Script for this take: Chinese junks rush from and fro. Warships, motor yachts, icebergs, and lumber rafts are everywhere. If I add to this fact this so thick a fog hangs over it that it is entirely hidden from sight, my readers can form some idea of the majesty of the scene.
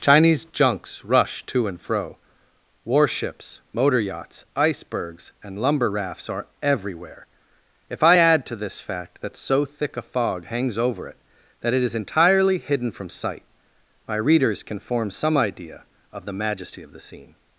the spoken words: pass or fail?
fail